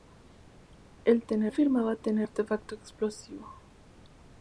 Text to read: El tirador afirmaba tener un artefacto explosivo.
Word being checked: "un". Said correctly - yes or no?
no